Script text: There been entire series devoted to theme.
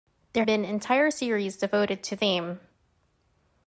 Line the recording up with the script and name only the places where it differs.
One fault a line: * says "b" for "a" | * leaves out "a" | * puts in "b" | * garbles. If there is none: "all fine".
all fine